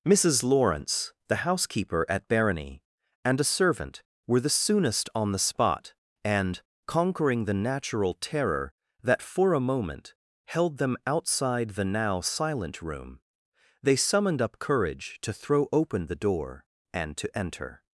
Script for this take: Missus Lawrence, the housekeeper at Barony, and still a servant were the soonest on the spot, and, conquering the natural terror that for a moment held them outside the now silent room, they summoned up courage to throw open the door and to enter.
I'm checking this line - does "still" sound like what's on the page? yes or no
no